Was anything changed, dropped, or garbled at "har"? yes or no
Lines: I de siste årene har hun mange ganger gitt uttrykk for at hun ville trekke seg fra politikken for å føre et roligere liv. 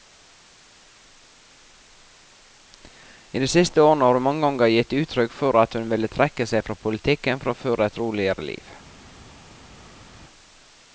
no